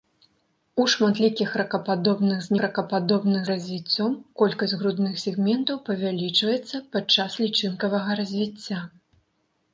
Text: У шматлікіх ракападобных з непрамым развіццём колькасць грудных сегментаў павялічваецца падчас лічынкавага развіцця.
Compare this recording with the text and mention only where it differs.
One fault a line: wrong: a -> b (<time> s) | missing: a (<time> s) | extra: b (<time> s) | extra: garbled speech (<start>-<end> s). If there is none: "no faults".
wrong: непрамым -> ракападобных (2.7 s)